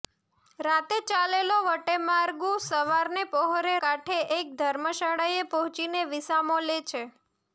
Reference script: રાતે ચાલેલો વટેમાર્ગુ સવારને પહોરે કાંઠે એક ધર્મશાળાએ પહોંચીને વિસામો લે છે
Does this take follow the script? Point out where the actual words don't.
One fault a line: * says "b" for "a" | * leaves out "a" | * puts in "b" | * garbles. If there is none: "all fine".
all fine